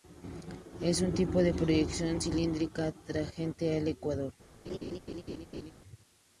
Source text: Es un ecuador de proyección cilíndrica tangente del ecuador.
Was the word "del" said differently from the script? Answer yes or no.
yes